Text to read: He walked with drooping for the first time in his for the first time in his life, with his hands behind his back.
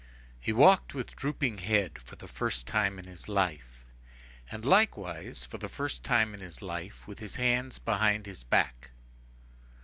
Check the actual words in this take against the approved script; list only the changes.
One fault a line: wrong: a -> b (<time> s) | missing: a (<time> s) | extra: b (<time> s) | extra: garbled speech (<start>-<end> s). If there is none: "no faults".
extra: head (1.6 s)
extra: life and likewise (3.3 s)